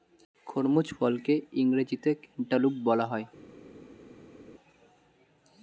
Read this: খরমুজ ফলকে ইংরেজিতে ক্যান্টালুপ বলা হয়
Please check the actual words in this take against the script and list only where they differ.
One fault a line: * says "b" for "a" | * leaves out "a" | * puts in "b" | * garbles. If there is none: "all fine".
all fine